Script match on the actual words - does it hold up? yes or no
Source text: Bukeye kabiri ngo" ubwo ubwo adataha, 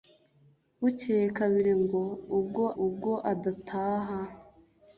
yes